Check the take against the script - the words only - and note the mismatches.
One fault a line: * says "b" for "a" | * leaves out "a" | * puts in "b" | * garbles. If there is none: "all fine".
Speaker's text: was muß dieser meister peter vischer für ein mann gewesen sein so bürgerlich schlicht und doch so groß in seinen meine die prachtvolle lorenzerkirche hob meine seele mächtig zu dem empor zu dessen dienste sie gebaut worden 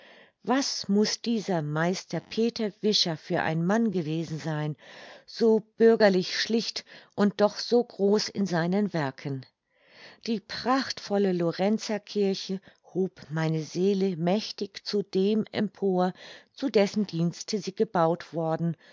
* says "werken" for "meine"